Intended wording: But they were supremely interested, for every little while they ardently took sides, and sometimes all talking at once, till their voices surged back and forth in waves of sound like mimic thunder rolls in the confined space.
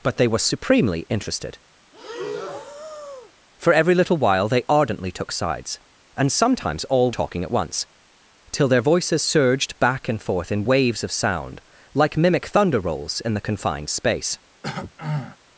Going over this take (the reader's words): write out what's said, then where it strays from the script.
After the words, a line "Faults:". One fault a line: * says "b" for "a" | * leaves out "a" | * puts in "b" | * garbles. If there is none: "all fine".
But they were supremely interested, for every little while they ardently took sides, and sometimes all talking at once, till their voices surged back and forth in waves of sound like mimic thunder rolls in the confined space.
Faults:
all fine